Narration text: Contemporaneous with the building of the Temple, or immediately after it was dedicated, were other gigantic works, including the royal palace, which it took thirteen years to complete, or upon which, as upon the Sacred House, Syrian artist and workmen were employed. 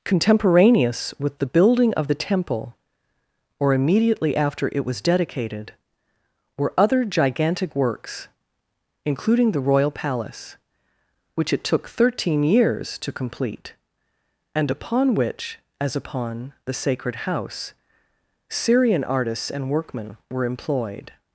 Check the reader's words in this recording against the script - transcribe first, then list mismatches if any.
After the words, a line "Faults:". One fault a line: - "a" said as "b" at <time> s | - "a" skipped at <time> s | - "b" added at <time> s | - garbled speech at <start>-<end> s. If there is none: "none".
Contemporaneous with the building of the Temple, or immediately after it was dedicated, were other gigantic works, including the royal palace, which it took thirteen years to complete, and upon which, as upon the Sacred House, Syrian artists and workmen were employed.
Faults:
- "or" said as "and" at 14.5 s
- "artist" said as "artists" at 19.0 s